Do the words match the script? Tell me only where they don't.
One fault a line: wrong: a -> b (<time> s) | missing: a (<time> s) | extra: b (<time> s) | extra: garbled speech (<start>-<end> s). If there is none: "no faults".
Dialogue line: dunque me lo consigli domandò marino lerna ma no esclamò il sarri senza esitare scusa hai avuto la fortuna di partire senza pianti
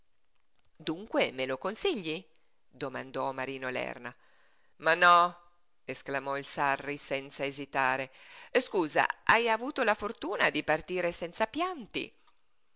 no faults